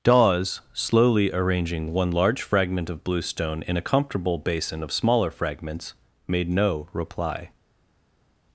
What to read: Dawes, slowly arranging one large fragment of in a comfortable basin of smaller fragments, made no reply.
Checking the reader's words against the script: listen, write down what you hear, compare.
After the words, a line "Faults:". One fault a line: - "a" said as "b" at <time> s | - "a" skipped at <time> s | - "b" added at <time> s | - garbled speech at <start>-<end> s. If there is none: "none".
Dawes, slowly arranging one large fragment of bluestone in a comfortable basin of smaller fragments, made no reply.
Faults:
- "bluestone" added at 3.0 s